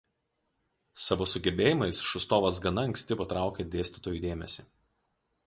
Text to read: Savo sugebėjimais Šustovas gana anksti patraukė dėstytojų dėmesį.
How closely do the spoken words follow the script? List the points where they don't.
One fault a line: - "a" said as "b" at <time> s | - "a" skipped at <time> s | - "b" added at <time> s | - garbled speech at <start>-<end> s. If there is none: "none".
none